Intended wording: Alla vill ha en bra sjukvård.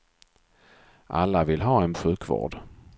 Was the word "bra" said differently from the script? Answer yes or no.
yes